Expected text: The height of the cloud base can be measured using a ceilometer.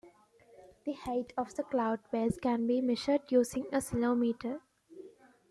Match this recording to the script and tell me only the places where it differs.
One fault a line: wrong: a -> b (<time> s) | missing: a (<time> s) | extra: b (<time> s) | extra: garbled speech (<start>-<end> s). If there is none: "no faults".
no faults